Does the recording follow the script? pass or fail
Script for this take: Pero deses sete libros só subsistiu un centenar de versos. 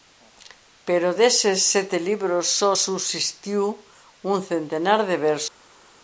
pass